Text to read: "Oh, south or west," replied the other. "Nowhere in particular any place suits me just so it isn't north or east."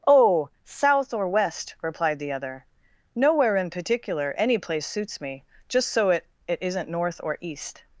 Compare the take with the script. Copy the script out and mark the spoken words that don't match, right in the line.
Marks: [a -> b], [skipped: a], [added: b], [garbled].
"Oh, south or west," replied the other. "Nowhere in particular any place suits me just so it [added: it] isn't north or east."